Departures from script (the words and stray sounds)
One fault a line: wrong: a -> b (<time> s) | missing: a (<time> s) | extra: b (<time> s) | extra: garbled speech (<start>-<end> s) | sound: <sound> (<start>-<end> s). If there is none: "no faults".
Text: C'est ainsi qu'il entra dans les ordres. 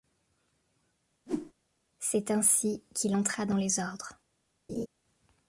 sound: whoosh (1.3-1.5 s)
sound: laugh (4.7-4.9 s)